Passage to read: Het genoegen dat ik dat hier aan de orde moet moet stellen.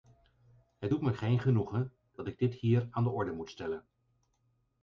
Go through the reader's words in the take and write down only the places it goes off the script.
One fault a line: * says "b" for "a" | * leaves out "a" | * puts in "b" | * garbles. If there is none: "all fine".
* puts in "doet me geen"
* says "dit" for "dat"
* leaves out "moet"